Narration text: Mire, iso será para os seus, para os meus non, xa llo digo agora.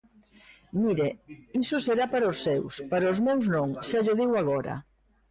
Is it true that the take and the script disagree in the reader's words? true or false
false